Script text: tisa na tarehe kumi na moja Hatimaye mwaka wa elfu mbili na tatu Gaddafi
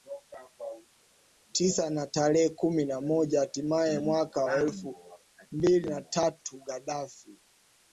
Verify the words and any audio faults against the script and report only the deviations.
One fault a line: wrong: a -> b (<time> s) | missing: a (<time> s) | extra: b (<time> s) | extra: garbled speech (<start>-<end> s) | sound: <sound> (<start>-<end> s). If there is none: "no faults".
no faults